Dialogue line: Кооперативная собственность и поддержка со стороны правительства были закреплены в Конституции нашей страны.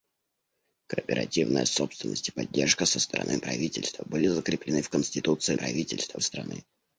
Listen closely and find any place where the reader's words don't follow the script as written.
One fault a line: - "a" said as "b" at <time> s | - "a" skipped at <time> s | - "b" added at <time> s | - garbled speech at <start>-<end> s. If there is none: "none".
- "нашей" said as "правительства" at 5.5 s